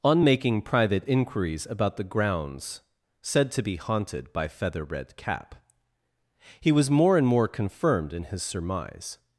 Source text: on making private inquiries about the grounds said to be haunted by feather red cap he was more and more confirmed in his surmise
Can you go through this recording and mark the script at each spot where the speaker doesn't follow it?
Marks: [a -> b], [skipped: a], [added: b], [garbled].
on making private inquiries about the grounds said to be haunted by feather red cap he was more and more confirmed in his surmise